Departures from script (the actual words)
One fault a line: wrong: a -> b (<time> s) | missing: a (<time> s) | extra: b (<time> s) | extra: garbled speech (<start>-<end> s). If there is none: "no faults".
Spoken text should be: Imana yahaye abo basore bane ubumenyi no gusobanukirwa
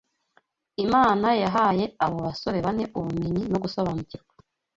no faults